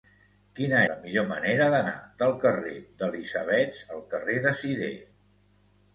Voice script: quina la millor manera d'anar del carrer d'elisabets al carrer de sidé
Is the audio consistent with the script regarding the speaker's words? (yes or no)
yes